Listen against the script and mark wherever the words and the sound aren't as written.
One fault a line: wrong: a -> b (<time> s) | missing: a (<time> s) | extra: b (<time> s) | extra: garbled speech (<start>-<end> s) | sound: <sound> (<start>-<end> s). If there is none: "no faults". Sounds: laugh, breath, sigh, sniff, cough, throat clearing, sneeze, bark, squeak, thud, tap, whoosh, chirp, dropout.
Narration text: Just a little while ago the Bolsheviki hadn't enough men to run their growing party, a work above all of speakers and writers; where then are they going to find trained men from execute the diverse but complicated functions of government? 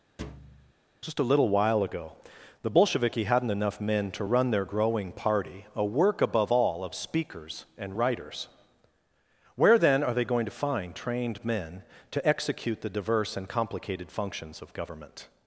sound: thud (0.2-0.7 s)
wrong: from -> to (12.1 s)
wrong: but -> and (13.4 s)